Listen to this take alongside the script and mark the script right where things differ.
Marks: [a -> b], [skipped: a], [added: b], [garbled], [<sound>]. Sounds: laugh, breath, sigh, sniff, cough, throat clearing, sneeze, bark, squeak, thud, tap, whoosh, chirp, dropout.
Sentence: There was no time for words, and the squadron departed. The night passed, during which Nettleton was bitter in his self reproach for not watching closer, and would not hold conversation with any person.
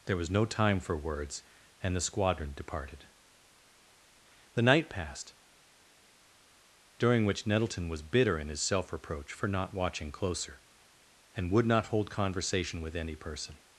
There was no time for words, and the squadron departed. The night passed, during which Nettleton was bitter in his self reproach for not watching closer, and would not hold conversation with any person.